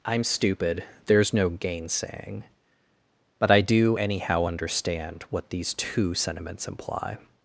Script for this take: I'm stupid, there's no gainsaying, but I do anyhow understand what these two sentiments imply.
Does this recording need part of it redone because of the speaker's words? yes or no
no